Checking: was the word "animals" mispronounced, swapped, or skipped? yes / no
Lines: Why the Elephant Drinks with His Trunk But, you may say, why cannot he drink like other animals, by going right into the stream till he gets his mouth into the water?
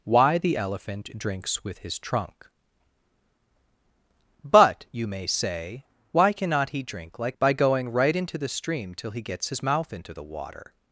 yes